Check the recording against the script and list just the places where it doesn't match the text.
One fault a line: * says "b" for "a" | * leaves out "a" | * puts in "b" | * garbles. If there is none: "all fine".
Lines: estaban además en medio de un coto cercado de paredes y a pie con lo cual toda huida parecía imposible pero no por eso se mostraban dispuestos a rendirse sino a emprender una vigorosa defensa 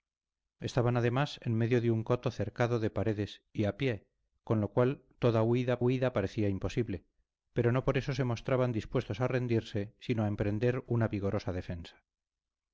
* puts in "huida"